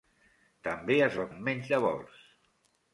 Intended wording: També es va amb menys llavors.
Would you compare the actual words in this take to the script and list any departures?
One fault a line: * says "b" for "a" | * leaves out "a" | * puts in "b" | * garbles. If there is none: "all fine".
all fine